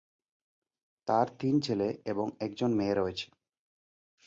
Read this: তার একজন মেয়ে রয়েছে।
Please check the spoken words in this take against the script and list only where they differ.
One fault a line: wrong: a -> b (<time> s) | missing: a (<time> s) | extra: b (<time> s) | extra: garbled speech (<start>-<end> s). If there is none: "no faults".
extra: তিন ছেলে এবং (1.4 s)